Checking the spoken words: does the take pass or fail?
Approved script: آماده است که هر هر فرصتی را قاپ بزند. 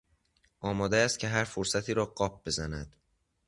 fail